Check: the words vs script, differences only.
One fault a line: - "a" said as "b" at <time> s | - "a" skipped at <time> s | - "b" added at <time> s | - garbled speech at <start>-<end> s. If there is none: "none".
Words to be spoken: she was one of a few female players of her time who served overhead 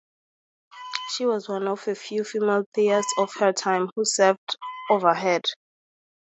none